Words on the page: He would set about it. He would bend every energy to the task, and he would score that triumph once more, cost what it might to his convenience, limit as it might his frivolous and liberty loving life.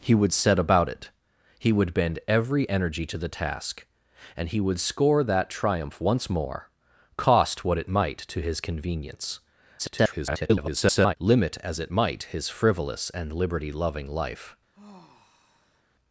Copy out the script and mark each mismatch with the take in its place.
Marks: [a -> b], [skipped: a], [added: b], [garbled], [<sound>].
He would set about it. He would bend every energy to the task, and he would score that triumph once more, cost what it might to his convenience, [garbled] limit as it might his frivolous and liberty loving life. [sigh]